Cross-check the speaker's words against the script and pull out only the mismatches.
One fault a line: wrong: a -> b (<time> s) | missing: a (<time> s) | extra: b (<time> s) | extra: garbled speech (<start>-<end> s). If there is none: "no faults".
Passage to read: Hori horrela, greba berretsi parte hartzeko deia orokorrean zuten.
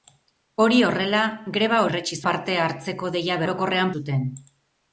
no faults